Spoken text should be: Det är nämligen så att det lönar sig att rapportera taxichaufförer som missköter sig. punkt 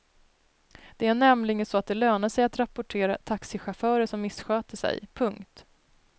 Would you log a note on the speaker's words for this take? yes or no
no